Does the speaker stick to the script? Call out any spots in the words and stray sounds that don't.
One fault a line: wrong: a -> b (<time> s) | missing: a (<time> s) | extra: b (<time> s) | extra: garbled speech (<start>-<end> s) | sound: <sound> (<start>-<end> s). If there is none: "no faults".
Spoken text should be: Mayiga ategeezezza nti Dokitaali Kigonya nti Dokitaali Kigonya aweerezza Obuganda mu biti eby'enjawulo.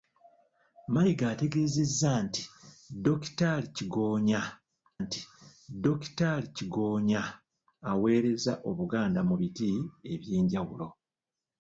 no faults